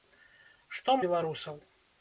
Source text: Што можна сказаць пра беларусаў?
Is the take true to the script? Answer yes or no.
no